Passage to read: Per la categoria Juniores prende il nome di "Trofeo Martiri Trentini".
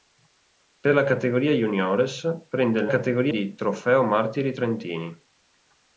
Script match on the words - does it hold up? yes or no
no